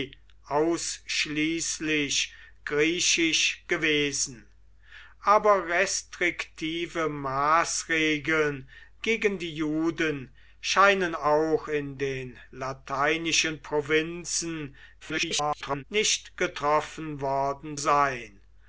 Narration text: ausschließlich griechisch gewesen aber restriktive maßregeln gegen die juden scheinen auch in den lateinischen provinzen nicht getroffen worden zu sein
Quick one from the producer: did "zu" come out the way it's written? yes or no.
no